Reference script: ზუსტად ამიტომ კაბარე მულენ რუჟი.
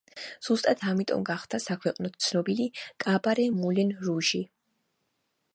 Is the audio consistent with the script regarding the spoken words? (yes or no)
no